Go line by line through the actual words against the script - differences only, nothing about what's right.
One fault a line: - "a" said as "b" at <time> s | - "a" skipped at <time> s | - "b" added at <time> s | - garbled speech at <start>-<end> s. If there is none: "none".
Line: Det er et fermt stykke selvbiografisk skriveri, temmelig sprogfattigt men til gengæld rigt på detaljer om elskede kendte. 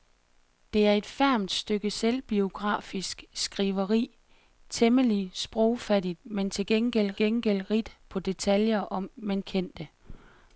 - "gengæld" added at 7.1 s
- "elskede" said as "men" at 9.1 s